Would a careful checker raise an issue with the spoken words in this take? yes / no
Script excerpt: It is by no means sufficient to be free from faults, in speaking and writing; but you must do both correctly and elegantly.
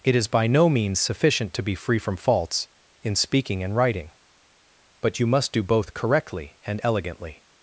no